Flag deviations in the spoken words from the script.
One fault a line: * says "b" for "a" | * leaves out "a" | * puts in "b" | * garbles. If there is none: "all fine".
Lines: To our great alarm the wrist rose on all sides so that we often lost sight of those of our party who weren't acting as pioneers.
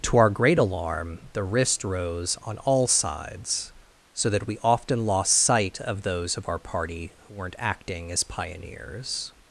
all fine